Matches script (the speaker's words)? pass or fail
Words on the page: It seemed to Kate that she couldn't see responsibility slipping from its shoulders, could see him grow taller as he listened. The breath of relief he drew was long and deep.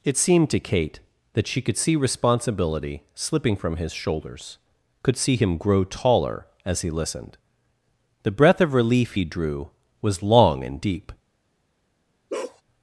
fail